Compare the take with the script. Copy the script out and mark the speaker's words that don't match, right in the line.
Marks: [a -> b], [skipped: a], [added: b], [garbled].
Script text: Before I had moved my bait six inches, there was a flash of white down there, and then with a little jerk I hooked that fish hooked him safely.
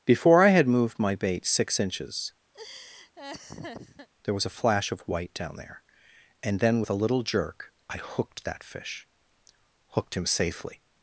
Before I had moved my bait six inches, there was a flash of white down there, and then with a little jerk I hooked that fish hooked him safely.